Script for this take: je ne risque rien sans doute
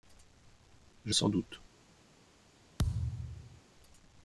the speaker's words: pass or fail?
fail